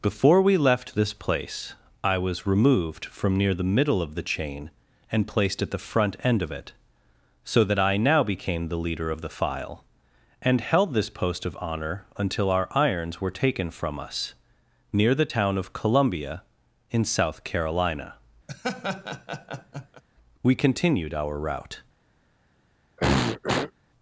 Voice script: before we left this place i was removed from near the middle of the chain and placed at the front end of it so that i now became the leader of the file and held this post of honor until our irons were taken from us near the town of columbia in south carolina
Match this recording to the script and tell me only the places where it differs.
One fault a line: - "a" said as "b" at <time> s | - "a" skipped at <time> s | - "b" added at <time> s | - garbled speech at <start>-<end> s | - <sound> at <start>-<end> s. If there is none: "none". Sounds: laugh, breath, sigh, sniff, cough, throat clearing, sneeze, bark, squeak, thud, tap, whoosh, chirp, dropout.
- laugh at 18.5-20.0 s
- "we continued our route" added at 20.4 s
- throat clearing at 23.0-23.7 s